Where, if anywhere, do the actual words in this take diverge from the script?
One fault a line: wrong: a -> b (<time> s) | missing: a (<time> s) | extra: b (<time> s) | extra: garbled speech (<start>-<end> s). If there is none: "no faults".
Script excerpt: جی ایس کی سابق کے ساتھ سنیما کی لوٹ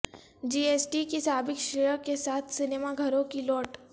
extra: ٹی (0.9 s)
extra: شرح (1.6 s)
extra: گھروں (3.0 s)